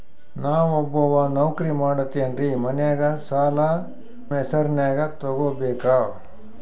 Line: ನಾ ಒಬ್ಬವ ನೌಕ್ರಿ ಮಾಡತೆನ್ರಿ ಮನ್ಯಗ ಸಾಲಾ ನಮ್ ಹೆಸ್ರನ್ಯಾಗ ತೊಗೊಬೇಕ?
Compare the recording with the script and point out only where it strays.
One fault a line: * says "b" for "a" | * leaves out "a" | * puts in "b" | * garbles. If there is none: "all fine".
* leaves out "ನಮ್"